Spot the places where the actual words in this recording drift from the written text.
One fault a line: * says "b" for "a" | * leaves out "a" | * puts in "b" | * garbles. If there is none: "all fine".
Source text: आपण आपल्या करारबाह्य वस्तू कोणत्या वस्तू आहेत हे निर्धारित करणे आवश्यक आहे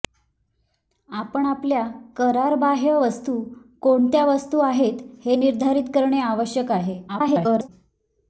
* garbles